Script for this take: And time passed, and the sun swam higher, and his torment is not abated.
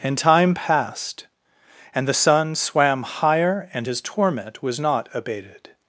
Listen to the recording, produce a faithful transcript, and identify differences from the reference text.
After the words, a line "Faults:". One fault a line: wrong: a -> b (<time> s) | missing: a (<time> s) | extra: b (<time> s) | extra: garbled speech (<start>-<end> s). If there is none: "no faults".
And time passed, and the sun swam higher, and his torment was not abated.
Faults:
wrong: is -> was (4.6 s)